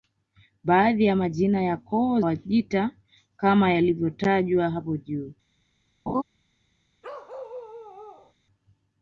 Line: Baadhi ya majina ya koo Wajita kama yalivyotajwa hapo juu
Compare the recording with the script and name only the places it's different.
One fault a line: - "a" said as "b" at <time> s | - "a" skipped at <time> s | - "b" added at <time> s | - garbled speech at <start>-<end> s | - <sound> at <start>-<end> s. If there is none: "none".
- laugh at 6.1-6.2 s
- bark at 7.0-8.3 s